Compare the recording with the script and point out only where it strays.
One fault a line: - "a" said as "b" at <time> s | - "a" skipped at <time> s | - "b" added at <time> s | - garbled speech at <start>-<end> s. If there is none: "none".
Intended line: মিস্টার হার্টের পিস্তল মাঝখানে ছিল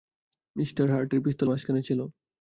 none